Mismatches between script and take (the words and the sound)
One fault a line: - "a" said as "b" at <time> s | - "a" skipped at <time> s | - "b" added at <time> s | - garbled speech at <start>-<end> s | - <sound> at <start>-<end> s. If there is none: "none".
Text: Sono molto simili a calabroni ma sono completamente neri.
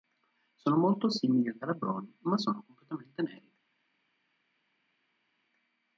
none